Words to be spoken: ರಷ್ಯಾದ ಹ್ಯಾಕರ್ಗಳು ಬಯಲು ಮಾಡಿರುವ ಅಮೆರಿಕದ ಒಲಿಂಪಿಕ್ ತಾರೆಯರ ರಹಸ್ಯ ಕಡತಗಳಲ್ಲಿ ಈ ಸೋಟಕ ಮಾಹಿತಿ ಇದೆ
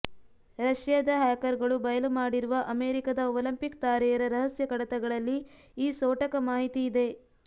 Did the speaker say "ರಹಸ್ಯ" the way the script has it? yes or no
yes